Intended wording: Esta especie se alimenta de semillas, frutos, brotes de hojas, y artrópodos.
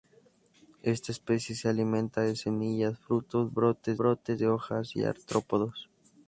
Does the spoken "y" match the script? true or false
true